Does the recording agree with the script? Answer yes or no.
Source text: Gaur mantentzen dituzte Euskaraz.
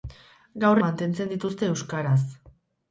yes